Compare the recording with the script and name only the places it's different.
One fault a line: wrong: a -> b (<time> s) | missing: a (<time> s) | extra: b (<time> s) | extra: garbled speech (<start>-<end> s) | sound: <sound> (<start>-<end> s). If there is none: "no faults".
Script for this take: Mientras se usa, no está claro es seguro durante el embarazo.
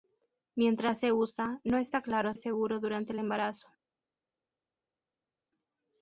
no faults